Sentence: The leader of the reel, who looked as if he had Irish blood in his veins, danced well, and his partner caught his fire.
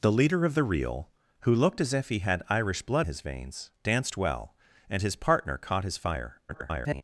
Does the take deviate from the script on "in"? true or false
true